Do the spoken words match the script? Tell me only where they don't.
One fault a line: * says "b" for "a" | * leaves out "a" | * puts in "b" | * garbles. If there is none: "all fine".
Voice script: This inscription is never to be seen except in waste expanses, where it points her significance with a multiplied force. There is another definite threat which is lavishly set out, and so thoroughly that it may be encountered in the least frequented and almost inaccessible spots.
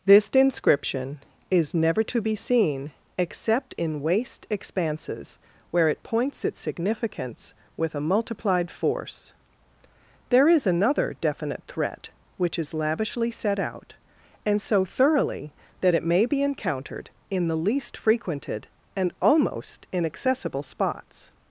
* says "its" for "her"